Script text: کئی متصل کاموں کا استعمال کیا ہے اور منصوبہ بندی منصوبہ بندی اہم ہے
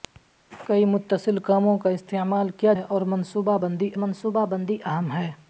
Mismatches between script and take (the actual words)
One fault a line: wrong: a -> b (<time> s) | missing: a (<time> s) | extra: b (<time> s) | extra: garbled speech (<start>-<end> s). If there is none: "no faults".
no faults